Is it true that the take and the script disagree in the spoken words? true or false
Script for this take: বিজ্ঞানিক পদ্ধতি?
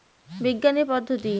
false